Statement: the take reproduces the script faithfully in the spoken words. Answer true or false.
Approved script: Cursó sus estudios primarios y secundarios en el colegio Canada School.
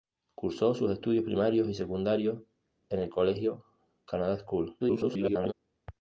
false